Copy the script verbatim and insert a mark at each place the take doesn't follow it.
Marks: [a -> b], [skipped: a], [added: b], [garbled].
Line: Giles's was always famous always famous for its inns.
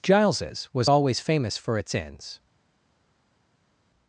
Giles's was always famous [skipped: always famous] for its inns.